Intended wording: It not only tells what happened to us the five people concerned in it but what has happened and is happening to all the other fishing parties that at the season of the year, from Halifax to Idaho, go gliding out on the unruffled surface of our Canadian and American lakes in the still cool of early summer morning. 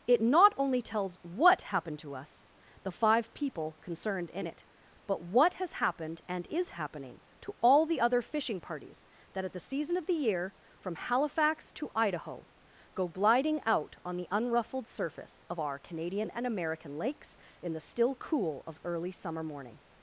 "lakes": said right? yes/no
yes